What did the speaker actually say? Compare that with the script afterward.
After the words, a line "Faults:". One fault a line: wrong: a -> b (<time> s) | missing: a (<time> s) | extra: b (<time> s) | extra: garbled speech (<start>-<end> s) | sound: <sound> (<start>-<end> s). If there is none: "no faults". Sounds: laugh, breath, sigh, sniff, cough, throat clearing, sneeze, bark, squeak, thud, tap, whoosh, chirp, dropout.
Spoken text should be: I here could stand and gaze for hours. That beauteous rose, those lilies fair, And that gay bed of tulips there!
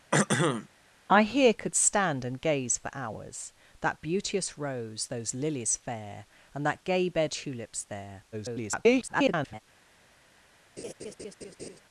I here could stand and gaze for hours. That beauteous rose, those lilies fair, And that gay bed tulips there! [garbled]
Faults:
sound: throat clearing (0.1-0.7 s)
missing: of (7.3 s)
extra: garbled speech (8.3-9.6 s)
sound: laugh (10.8-11.8 s)